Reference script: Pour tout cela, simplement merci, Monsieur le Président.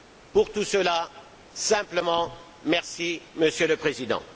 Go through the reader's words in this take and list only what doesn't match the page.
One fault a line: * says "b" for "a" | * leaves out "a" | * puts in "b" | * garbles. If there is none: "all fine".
all fine